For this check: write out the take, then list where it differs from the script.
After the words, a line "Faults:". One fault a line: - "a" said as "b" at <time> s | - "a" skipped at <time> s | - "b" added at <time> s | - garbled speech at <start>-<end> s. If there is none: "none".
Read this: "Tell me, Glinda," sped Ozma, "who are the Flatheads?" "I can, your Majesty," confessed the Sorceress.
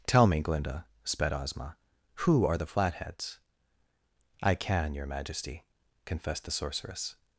"Tell me, Glinda," sped Ozma, "who are the Flatheads?" "I can, your Majesty," confessed the Sorceress.
Faults:
none